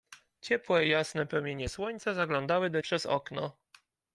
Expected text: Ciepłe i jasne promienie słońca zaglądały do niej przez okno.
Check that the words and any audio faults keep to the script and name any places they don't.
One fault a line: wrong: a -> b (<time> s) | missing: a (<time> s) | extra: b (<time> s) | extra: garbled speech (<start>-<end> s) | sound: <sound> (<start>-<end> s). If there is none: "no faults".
missing: niej (2.8 s)